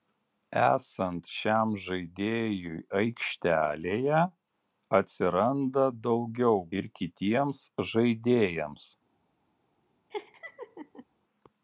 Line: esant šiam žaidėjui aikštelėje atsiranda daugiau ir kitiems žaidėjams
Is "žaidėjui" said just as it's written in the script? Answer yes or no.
yes